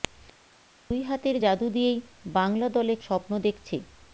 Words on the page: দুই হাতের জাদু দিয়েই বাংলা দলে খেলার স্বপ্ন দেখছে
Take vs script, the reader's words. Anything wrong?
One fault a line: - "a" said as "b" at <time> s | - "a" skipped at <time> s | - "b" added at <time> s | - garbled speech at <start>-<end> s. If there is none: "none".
- "খেলার" skipped at 2.9 s